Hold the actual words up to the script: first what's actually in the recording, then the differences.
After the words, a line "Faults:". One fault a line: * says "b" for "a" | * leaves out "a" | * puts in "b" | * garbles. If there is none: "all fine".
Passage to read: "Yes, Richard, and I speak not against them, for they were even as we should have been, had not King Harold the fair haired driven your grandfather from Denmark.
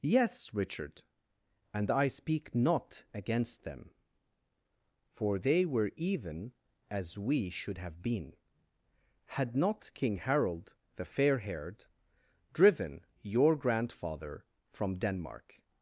"Yes, Richard, and I speak not against them, for they were even as we should have been, had not King Harold the fair haired driven your grandfather from Denmark.
Faults:
all fine